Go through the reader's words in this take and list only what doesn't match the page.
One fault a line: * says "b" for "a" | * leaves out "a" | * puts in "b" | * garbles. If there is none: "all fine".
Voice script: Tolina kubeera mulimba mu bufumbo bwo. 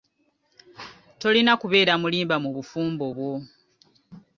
all fine